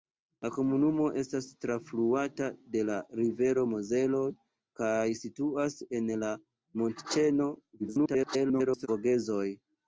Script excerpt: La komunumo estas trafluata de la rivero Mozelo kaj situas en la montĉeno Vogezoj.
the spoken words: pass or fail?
fail